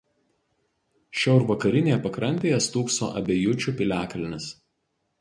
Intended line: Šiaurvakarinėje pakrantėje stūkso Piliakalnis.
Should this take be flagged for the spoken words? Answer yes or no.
yes